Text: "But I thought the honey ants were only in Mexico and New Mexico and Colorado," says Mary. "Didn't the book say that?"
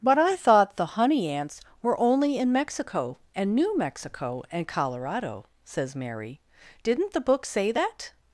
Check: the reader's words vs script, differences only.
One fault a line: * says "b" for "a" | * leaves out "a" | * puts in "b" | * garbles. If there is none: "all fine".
all fine